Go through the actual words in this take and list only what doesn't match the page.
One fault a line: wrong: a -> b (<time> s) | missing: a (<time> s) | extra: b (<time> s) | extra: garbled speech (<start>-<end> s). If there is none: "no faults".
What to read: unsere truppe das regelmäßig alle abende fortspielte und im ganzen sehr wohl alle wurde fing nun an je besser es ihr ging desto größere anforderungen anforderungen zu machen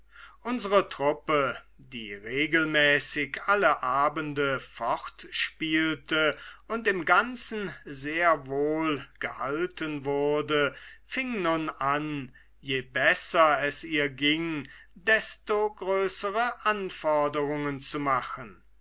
wrong: das -> die (1.8 s)
wrong: alle -> gehalten (9.2 s)
missing: anforderungen (17.8 s)